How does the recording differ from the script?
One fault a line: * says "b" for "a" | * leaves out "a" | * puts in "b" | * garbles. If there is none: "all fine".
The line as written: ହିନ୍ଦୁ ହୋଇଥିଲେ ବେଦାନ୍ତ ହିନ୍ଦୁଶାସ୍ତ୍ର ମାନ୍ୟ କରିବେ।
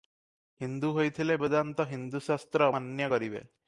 all fine